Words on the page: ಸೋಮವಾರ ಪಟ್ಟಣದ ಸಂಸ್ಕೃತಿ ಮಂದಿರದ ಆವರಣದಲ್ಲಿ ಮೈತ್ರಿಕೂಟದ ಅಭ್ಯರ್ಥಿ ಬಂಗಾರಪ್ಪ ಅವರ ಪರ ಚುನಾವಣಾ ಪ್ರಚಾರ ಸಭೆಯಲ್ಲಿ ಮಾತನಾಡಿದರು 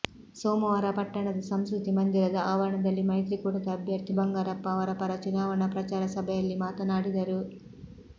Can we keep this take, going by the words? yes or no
yes